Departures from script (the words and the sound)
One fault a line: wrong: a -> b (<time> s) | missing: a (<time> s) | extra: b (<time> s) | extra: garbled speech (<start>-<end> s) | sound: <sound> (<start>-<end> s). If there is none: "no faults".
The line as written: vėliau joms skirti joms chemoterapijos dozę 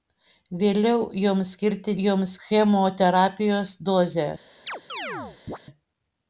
sound: chirp (4.7-5.6 s)